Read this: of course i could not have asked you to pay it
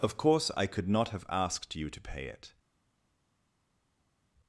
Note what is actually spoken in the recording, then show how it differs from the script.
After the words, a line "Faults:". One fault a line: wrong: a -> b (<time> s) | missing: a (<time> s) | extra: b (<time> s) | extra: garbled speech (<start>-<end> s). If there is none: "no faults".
of course i could not have asked you to pay it
Faults:
no faults